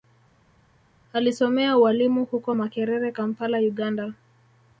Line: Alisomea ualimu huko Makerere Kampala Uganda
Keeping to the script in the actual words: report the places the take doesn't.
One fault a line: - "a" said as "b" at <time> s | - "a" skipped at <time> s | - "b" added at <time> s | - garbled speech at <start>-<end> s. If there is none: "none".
none